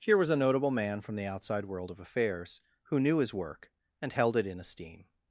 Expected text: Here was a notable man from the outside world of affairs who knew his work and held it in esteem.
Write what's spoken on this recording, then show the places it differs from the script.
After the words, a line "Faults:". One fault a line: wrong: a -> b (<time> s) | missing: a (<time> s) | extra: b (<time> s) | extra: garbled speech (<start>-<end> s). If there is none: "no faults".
Here was a notable man from the outside world of affairs who knew his work and held it in esteem.
Faults:
no faults